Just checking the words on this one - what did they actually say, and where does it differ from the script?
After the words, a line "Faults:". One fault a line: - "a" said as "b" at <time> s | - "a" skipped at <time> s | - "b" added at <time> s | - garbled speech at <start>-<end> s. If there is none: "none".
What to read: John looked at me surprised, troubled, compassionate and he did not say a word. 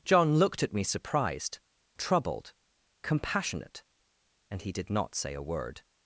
John looked at me surprised, troubled, compassionate and he did not say a word.
Faults:
none